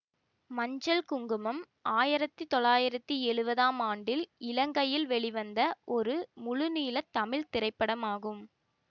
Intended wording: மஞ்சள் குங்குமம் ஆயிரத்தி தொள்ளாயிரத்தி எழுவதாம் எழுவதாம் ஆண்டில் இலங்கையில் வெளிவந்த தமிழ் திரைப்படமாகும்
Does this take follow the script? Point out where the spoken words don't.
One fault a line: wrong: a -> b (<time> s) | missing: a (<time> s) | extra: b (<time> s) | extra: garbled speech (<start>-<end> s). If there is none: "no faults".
missing: எழுவதாம் (3.8 s)
extra: ஒரு முழுநீள (6.0 s)